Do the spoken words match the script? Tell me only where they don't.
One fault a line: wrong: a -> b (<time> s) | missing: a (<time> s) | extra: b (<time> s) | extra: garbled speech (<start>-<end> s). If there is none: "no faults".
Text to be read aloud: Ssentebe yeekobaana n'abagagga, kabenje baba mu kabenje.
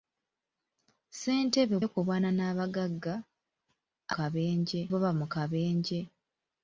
no faults